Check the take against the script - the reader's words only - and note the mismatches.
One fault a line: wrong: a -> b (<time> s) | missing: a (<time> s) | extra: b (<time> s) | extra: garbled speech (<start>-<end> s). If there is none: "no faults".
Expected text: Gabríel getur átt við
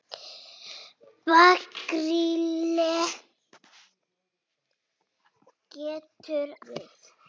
missing: átt (6.5 s)